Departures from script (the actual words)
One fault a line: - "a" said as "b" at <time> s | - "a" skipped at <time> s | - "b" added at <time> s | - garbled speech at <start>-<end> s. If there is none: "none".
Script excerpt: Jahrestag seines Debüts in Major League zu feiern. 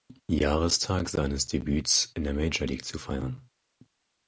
- "der" added at 2.2 s